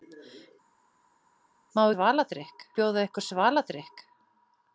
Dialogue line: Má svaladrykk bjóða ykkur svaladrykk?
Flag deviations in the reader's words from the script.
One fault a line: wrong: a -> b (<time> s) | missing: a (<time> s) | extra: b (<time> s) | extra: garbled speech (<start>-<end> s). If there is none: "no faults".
no faults